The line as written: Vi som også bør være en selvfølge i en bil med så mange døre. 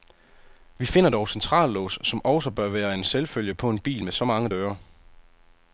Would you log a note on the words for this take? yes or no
yes